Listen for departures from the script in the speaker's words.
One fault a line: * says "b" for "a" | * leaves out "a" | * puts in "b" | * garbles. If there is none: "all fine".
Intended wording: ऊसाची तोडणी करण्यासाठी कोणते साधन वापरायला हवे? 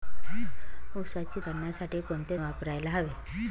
* leaves out "तोडणी"
* leaves out "साधन"